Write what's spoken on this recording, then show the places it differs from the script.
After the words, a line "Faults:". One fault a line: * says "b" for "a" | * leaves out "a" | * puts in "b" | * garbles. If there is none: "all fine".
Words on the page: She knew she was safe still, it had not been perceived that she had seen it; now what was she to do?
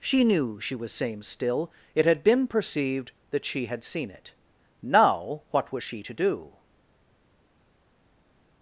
She knew she was same still, it had been perceived that she had seen it; now what was she to do?
Faults:
* says "same" for "safe"
* leaves out "not"